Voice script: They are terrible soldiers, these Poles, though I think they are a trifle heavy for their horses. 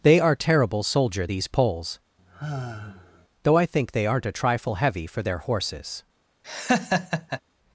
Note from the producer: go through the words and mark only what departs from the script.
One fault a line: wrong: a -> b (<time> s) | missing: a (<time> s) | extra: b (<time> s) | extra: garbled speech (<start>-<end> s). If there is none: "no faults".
wrong: soldiers -> soldier (0.8 s)
wrong: are -> aren't (4.0 s)